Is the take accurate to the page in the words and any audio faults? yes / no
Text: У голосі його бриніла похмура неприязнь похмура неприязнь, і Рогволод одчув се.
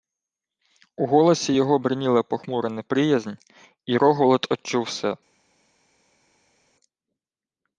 no